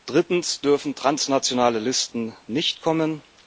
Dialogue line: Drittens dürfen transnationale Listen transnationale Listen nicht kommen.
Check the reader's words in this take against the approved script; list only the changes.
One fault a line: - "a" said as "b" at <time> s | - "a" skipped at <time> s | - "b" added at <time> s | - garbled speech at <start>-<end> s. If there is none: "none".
- "transnationale Listen" skipped at 2.3 s